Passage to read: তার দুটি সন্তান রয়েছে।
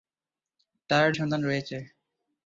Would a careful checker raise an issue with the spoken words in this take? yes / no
yes